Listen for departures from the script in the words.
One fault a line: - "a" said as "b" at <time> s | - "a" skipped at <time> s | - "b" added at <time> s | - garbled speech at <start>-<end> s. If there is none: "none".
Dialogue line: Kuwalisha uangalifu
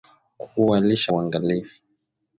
none